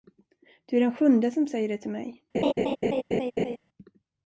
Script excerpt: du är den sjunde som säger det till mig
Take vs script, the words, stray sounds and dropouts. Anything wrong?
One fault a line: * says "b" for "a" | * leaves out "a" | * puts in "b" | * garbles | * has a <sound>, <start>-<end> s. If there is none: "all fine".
* has a laugh, 2.3-3.6 s